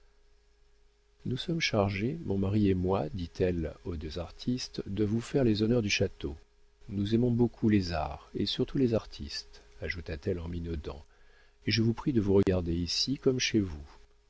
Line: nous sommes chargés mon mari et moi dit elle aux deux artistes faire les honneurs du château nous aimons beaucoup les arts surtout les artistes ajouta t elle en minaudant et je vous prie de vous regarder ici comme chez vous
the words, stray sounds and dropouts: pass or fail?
fail